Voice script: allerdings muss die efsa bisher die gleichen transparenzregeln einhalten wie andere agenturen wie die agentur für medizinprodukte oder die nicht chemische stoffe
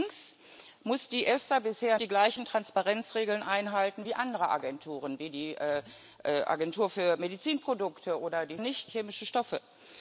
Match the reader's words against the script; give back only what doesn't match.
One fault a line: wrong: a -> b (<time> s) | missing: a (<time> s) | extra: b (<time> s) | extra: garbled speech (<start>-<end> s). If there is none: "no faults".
no faults